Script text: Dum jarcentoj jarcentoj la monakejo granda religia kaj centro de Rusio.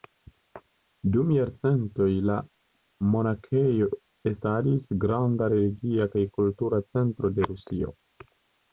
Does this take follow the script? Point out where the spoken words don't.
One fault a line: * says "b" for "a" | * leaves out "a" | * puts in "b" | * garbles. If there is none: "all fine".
* leaves out "jarcentoj"
* puts in "estadis"
* puts in "kultura"